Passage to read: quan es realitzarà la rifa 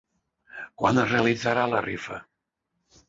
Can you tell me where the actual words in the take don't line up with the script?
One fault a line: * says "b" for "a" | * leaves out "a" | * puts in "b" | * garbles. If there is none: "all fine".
all fine